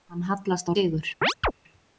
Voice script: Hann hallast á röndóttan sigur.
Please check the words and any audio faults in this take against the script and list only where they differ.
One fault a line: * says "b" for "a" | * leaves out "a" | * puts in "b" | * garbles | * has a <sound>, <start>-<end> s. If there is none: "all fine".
* leaves out "röndóttan"
* has a chirp, 1.2-1.5 s